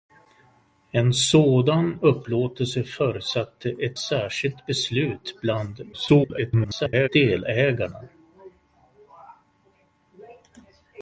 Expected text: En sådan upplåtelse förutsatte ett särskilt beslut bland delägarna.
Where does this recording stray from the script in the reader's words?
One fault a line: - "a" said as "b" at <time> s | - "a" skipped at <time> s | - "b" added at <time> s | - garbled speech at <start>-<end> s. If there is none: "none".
- garbled speech at 5.9-7.1 s